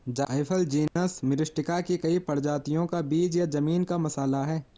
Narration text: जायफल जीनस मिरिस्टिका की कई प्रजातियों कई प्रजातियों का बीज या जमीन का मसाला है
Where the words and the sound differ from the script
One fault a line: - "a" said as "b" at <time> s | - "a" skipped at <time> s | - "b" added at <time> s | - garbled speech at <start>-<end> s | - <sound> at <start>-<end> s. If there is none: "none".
- dropout at 0.9-1.0 s
- "कई प्रजातियों" skipped at 2.9 s